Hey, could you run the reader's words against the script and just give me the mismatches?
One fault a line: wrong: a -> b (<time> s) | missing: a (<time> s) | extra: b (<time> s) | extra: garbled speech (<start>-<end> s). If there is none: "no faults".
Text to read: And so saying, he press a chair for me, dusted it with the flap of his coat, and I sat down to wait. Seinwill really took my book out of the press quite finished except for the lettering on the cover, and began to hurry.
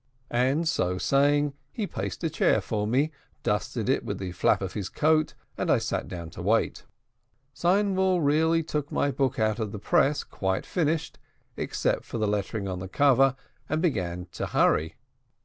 wrong: press -> placed (1.9 s)